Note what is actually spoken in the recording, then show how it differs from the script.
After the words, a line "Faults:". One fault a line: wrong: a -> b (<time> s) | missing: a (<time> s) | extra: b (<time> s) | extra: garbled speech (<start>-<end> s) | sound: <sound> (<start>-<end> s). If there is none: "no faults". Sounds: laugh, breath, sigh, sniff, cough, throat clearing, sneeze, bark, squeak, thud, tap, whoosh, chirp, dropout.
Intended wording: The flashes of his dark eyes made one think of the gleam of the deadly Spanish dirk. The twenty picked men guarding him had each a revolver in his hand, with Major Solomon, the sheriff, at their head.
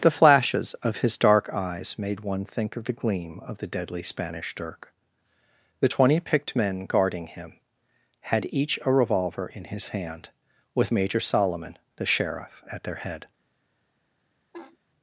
The flashes of his dark eyes made one think of the gleam of the deadly Spanish dirk. The twenty picked men guarding him had each a revolver in his hand, with Major Solomon, the sheriff, at their head.
Faults:
sound: laugh (14.5-14.8 s)